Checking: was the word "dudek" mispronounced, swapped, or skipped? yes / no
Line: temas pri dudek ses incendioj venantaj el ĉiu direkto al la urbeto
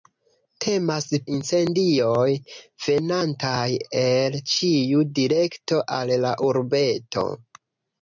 yes